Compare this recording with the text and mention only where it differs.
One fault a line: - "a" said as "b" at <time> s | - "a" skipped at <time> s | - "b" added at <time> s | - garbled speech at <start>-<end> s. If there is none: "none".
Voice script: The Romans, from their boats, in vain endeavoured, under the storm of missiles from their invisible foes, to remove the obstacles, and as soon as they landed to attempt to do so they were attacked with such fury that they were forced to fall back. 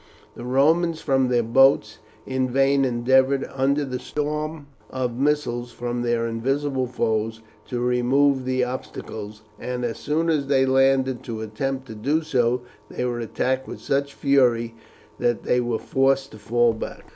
none